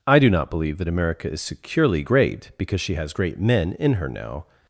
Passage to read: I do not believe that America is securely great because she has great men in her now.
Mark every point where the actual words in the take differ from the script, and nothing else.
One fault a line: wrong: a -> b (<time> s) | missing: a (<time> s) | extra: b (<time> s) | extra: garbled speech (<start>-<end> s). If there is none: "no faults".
no faults